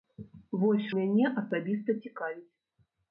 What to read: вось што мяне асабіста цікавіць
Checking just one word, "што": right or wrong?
wrong